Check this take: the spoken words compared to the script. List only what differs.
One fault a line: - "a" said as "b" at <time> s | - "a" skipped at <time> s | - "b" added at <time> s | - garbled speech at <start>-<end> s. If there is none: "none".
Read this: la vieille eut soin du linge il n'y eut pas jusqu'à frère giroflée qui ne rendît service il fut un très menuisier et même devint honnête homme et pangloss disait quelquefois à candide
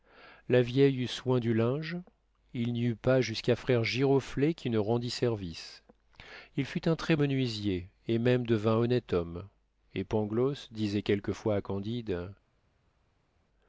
none